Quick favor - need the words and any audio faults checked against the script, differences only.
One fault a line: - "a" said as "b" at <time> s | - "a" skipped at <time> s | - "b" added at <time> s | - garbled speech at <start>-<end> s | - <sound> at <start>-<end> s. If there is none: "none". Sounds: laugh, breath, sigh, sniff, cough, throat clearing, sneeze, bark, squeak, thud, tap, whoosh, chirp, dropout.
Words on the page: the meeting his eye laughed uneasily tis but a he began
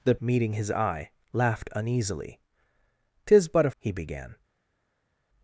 none